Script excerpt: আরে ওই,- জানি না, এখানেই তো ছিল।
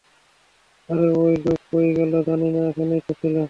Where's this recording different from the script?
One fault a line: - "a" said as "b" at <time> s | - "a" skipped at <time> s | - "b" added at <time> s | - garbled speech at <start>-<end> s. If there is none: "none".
- "লোক কই গেল" added at 1.4 s